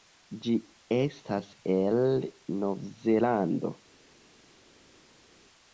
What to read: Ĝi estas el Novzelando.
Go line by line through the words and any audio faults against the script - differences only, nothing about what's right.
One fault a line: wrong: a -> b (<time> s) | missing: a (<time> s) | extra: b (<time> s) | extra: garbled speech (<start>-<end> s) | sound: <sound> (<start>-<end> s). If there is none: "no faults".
no faults